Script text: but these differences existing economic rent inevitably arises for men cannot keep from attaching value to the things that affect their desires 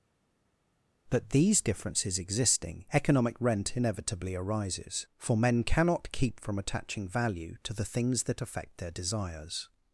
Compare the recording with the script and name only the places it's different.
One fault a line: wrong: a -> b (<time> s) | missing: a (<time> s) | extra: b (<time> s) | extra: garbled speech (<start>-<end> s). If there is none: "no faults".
no faults